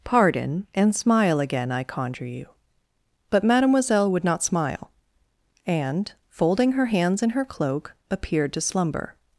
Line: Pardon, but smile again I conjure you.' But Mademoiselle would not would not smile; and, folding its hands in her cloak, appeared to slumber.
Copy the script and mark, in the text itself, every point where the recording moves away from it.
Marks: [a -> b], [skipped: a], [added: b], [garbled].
Pardon, [but -> and] smile again I conjure you.' But Mademoiselle would not [skipped: would not] smile; and, folding [its -> her] hands in her cloak, appeared to slumber.